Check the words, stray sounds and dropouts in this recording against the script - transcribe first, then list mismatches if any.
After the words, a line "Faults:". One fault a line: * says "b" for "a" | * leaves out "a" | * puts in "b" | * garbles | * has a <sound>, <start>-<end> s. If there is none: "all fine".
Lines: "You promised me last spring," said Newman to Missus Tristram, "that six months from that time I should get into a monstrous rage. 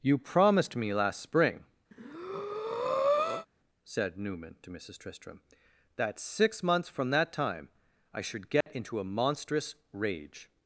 "You promised me last spring," said Newman to Missus Tristram, "that six months from that time I should get into a monstrous rage.
Faults:
* has a breath, 1.9-3.5 s
* has a dropout, 8.6-8.7 s